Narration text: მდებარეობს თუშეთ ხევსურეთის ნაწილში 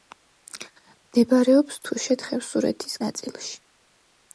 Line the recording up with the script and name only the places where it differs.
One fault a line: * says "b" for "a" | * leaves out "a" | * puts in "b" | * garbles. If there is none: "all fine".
all fine